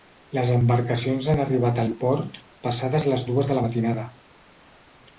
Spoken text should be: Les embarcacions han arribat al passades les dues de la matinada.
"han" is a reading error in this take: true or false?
false